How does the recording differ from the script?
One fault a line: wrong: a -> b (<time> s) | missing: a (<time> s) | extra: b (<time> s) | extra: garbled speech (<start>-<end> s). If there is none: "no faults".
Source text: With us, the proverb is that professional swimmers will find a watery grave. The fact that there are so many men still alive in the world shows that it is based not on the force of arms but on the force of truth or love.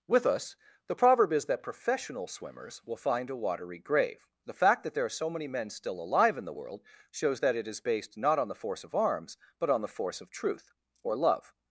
no faults